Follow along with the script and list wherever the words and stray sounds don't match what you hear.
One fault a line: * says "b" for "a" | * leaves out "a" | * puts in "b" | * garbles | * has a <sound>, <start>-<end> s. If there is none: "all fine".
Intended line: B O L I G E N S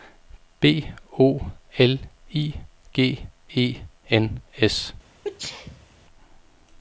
* has a sneeze, 5.2-5.9 s